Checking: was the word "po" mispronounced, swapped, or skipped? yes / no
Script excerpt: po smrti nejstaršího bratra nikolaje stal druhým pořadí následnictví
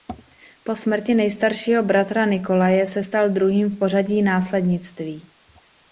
no